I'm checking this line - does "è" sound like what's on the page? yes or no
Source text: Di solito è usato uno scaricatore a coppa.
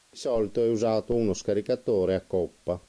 yes